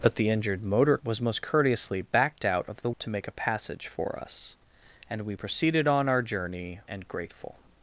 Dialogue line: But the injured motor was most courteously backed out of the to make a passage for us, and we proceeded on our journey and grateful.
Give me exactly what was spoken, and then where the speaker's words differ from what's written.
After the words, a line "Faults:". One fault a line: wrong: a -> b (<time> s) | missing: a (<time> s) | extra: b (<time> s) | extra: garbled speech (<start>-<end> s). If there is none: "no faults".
But the injured motor was most courteously backed out of the to make a passage for us, and we proceeded on our journey and grateful.
Faults:
no faults